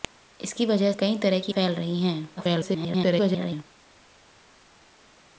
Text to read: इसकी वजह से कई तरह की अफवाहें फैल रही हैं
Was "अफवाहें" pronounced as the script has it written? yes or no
no